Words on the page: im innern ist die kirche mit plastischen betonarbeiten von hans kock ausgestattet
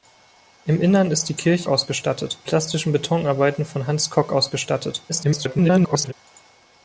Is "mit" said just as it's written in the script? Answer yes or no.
no